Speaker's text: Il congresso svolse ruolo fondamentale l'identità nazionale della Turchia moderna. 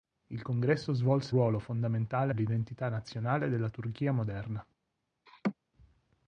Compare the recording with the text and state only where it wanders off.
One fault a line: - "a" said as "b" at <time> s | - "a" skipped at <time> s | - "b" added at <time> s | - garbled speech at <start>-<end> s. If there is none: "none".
none